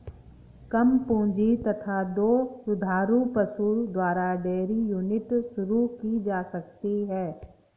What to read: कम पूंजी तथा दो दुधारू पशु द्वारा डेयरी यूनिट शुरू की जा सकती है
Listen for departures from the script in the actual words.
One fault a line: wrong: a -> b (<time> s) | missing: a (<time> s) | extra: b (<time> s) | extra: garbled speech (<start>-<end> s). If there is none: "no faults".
no faults